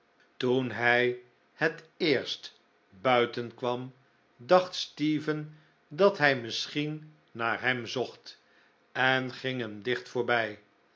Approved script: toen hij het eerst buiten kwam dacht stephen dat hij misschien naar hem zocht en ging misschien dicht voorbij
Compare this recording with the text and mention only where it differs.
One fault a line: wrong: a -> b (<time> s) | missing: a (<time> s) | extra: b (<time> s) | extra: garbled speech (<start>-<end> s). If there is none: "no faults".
wrong: misschien -> hem (9.6 s)